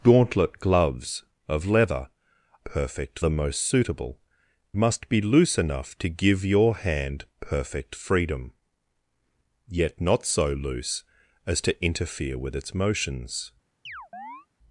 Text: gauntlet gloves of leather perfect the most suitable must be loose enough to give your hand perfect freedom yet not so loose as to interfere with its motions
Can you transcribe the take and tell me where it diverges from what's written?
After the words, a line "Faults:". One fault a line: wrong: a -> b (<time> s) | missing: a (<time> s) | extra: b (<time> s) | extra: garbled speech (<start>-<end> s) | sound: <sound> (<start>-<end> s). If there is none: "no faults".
gauntlet gloves of leather perfect the most suitable must be loose enough to give your hand perfect freedom yet not so loose as to interfere with its motions
Faults:
sound: chirp (13.9-14.5 s)